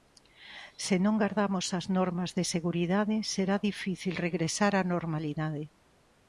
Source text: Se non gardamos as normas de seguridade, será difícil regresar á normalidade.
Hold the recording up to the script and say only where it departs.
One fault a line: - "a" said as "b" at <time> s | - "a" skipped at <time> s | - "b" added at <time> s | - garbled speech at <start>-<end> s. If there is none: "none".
none